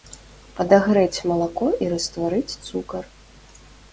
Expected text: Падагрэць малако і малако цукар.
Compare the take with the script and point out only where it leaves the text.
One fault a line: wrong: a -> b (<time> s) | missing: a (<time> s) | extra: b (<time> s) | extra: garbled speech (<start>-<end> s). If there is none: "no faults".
wrong: малако -> растварыць (1.9 s)